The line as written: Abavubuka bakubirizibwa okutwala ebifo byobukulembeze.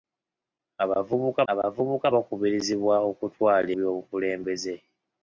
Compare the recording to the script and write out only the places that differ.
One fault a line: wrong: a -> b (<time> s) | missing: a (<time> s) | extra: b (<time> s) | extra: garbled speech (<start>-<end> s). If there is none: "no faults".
extra: abavubuka (1.5 s)
missing: ebifo (3.7 s)